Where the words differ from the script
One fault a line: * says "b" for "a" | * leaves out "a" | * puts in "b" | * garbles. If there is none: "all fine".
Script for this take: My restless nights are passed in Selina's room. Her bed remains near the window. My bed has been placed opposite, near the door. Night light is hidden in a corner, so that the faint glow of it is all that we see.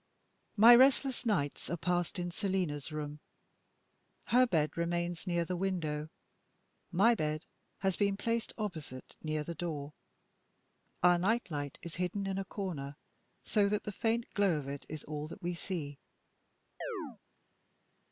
* puts in "Our"